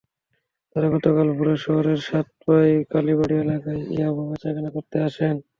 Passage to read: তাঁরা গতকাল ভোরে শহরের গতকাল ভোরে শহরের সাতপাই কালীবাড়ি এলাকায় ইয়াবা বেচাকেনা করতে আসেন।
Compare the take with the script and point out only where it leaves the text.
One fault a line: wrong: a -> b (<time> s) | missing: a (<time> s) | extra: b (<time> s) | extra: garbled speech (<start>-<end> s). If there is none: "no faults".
missing: গতকাল ভোরে শহরের (2.0 s)